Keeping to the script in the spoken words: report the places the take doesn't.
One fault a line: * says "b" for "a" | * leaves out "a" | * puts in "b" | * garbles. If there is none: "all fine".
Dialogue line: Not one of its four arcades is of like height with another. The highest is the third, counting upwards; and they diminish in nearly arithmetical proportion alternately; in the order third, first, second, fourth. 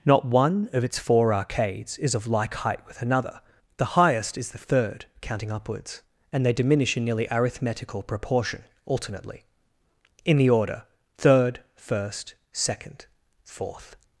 all fine